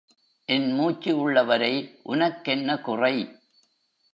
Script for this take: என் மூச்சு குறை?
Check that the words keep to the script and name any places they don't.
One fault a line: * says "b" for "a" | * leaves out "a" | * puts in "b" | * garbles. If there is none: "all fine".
* puts in "உள்ளவரை உனக்கென்ன"